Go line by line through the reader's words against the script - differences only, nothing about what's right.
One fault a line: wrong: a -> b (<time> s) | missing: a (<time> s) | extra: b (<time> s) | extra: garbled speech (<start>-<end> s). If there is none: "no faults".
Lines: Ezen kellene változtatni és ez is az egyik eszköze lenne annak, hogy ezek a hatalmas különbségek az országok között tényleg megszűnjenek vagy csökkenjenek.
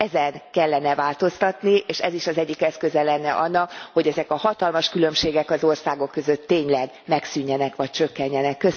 no faults